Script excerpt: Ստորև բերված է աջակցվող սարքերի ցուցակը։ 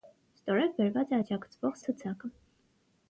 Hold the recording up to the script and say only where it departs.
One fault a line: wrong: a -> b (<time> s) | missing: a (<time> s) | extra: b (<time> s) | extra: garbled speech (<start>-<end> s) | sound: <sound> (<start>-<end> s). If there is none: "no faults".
missing: սարքերի (1.8 s)